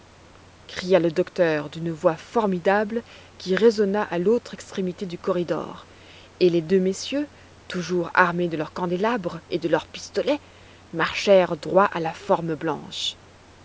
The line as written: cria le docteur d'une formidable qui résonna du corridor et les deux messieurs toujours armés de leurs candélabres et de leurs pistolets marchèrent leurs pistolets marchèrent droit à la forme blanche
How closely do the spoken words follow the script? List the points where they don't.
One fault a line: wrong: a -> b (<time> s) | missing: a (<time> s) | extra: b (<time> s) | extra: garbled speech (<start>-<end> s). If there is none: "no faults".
extra: voix (1.9 s)
extra: à l'autre extrémité (4.0 s)
missing: leurs pistolets marchèrent (11.6 s)